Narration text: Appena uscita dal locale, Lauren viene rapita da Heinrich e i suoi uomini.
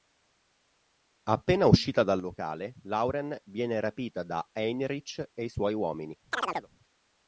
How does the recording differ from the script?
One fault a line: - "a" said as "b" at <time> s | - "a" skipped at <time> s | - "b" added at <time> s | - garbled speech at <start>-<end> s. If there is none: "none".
none